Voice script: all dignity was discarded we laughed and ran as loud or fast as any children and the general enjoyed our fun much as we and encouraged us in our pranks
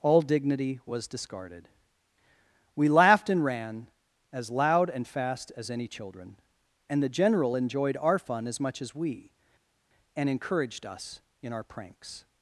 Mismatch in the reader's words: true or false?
true